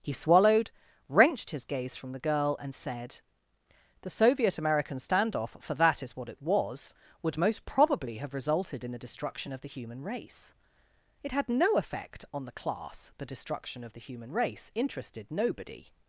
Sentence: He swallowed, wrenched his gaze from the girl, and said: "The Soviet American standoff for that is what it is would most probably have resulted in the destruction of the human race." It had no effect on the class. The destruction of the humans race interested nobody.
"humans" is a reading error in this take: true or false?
true